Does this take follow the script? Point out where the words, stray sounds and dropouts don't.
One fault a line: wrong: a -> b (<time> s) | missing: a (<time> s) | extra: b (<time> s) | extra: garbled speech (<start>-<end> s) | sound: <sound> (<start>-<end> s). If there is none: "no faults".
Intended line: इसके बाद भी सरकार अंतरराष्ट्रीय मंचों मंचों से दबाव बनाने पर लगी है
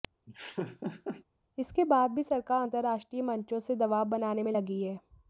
sound: laugh (0.3-1.2 s)
missing: मंचों (3.6 s)
wrong: पर -> में (4.4 s)